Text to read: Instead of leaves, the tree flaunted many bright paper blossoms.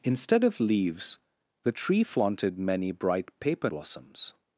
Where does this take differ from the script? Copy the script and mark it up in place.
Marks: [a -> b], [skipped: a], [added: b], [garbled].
Instead of leaves, the tree flaunted many bright paper blossoms.